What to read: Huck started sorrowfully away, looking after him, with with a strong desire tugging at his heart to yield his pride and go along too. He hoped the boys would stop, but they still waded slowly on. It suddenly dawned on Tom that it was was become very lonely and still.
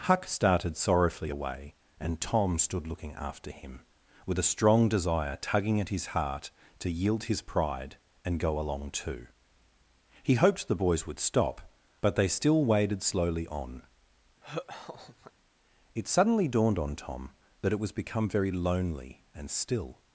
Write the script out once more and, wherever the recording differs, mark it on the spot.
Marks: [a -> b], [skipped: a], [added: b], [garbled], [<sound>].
Huck started sorrowfully away, [added: and Tom stood] looking after him, with [skipped: with] a strong desire tugging at his heart to yield his pride and go along too. He hoped the boys would stop, but they still waded slowly on. [laugh] It suddenly dawned on Tom that it was [skipped: was] become very lonely and still.